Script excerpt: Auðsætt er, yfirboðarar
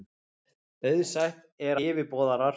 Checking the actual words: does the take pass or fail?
pass